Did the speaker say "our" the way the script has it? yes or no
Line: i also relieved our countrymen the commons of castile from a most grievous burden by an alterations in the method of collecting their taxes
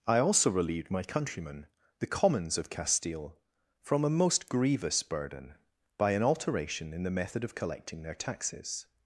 no